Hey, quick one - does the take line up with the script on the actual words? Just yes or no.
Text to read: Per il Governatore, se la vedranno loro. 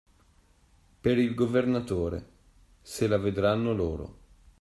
yes